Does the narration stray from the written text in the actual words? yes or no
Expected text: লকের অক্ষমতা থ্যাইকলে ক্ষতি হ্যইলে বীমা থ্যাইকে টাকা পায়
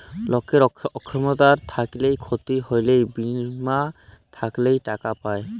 no